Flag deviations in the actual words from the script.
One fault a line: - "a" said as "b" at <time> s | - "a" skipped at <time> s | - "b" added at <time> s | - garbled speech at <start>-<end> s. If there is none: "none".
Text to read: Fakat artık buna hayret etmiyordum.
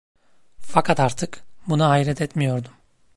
none